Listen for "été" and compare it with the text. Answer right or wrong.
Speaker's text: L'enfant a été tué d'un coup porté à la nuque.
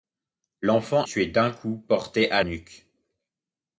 wrong